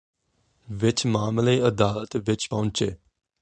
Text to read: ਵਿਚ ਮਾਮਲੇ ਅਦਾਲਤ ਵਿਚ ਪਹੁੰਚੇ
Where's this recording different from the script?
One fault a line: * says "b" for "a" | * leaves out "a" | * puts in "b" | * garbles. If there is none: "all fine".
all fine